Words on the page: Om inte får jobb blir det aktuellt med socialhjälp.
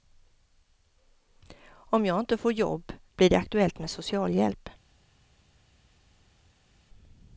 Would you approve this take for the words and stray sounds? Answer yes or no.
no